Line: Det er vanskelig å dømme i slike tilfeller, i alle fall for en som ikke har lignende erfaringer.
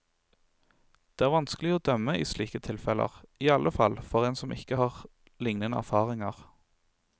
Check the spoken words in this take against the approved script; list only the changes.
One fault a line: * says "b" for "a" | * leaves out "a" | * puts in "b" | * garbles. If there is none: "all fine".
all fine